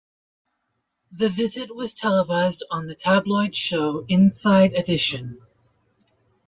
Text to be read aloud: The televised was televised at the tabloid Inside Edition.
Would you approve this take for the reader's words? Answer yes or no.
no